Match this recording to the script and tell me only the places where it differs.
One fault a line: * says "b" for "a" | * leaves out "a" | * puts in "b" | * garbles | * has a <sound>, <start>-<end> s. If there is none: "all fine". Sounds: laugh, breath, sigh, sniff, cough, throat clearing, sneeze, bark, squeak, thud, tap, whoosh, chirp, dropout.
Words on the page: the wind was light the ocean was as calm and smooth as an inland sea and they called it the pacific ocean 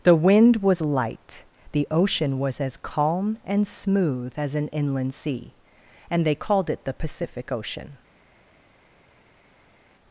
all fine